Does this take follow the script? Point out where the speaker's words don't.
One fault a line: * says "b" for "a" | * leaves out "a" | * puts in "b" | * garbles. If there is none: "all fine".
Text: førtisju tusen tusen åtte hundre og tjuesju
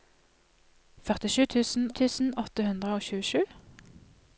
all fine